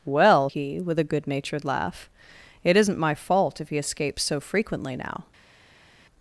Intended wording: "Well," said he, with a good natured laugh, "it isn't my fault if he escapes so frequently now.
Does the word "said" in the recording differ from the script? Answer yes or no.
yes